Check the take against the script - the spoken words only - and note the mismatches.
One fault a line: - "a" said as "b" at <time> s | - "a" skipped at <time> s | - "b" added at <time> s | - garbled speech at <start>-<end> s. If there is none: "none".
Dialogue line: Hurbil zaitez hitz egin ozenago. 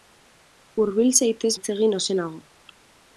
none